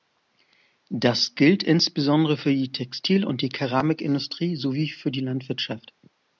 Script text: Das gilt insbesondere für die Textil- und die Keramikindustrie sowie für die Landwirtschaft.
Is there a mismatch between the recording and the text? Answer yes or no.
no